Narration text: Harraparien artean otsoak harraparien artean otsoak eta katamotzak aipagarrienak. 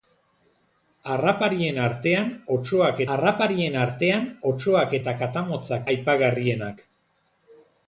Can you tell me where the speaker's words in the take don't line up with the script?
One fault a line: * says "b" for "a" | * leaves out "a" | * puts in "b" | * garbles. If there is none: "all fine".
all fine